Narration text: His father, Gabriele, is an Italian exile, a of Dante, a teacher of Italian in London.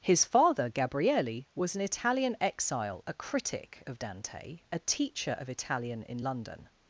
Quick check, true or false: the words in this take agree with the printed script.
false